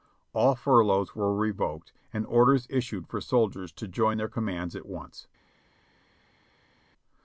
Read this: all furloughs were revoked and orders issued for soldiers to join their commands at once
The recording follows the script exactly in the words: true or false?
true